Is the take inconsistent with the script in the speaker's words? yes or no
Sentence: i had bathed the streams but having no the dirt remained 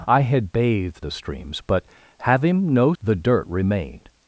no